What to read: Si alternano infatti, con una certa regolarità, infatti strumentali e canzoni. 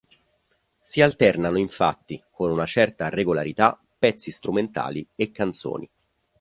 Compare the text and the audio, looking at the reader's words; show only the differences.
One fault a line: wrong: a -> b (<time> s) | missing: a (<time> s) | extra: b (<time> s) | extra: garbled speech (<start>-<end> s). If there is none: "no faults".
wrong: infatti -> pezzi (4.0 s)